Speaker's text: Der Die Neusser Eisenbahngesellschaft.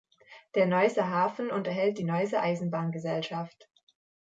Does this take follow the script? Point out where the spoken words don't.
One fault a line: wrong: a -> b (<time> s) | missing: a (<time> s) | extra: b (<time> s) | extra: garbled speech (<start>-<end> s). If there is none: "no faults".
extra: Neusser Hafen unterhält (0.7 s)